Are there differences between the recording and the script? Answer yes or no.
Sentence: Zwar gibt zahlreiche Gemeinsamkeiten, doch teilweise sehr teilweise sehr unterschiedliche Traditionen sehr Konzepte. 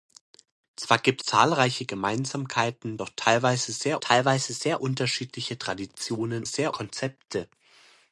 no